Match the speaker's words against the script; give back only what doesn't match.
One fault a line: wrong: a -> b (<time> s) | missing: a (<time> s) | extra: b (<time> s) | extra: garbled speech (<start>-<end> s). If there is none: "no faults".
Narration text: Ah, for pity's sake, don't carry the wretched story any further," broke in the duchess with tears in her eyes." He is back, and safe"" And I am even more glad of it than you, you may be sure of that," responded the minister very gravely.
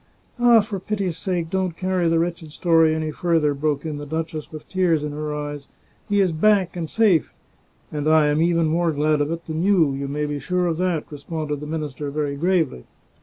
no faults